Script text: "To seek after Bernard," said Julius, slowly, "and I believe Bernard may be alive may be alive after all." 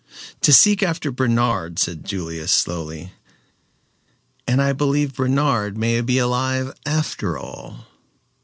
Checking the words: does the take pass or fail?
fail